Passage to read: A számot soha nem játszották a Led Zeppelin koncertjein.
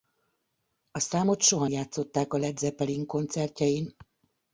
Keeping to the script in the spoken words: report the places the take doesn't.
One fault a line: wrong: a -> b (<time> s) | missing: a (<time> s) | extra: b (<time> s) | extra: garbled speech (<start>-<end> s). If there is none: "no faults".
missing: nem (1.7 s)